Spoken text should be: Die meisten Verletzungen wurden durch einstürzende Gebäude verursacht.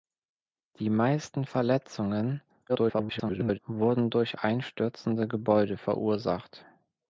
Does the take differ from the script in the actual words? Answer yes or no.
yes